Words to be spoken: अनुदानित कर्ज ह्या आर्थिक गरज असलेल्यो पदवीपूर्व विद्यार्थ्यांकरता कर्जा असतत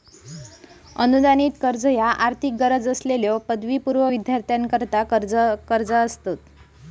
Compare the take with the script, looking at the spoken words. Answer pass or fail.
pass